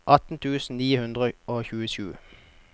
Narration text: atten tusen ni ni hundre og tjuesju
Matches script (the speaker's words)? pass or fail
fail